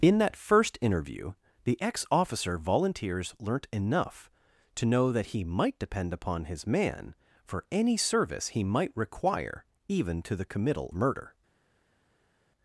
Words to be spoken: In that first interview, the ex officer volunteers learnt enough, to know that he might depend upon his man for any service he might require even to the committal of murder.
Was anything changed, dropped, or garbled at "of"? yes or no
yes